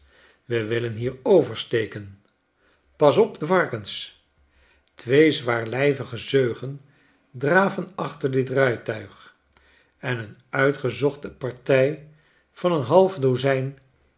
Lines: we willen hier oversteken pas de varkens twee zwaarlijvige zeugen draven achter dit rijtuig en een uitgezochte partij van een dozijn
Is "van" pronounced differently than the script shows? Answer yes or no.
no